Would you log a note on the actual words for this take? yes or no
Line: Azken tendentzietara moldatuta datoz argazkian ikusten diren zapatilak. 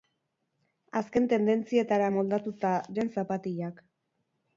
yes